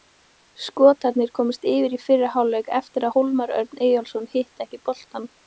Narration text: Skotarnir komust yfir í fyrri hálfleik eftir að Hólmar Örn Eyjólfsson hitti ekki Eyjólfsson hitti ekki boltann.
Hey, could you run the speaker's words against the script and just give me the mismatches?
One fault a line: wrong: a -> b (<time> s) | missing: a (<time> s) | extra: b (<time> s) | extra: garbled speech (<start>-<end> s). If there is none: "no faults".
missing: Eyjólfsson hitti ekki (4.8 s)